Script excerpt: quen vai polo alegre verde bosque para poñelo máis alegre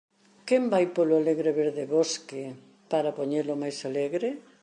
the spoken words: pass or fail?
pass